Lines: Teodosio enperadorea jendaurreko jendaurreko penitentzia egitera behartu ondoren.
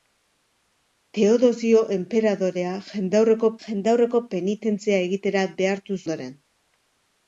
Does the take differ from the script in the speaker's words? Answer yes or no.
no